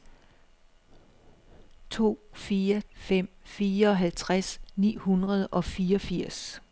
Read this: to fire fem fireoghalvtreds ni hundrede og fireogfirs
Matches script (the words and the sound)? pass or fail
pass